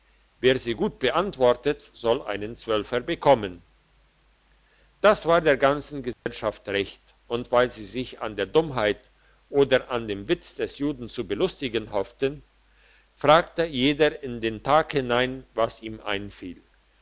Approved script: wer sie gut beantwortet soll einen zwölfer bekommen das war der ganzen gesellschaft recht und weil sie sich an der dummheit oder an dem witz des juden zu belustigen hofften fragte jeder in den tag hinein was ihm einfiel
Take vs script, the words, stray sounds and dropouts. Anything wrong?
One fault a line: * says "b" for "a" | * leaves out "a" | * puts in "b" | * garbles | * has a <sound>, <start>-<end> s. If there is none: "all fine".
* has a dropout, 6.1-6.3 s